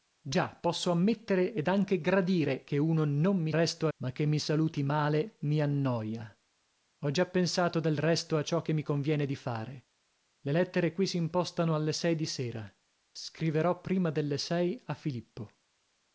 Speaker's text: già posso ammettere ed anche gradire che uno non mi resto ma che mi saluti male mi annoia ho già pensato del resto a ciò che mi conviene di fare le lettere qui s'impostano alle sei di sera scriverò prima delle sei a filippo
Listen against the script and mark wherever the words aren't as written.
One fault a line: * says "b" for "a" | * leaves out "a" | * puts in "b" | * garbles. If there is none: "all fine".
all fine